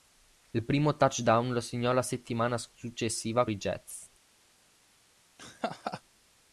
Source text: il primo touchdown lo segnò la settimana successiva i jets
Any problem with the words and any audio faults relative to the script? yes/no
yes